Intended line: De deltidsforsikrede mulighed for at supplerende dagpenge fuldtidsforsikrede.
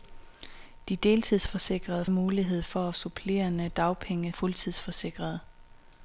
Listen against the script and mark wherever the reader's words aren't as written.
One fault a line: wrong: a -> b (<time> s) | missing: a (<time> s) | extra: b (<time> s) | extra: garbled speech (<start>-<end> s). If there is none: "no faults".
no faults